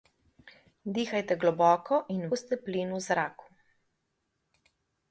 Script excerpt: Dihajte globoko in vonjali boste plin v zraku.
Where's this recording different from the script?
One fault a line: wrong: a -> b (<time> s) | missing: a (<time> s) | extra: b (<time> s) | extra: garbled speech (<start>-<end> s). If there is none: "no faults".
missing: vonjali (2.2 s)